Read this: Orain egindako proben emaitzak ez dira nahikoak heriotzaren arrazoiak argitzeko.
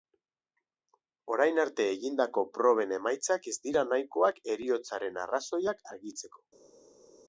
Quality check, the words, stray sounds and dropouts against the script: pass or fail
fail